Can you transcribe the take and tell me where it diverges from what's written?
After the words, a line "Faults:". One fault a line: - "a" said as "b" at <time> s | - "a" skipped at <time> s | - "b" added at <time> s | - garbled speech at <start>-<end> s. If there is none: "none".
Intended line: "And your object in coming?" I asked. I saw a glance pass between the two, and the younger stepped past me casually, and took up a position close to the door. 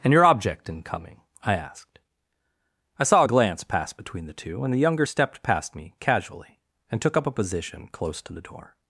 "And your object in coming?" I asked. I saw a glance pass between the two, and the younger stepped past me casually, and took up a position close to the door.
Faults:
none